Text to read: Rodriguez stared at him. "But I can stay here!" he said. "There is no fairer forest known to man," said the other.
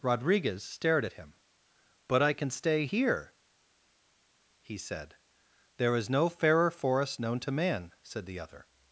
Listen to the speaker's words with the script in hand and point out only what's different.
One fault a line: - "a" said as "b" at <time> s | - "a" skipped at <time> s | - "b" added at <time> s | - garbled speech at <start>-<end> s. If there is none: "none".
none